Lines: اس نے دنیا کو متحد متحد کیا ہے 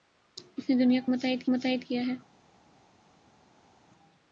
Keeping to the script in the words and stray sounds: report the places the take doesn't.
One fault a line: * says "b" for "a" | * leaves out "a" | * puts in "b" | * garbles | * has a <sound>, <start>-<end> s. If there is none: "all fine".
all fine